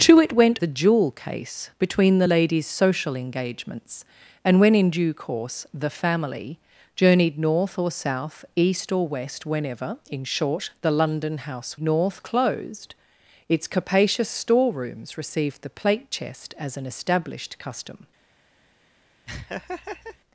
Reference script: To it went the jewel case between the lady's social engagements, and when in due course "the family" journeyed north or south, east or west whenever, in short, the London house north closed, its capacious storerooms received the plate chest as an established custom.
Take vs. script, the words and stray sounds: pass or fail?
fail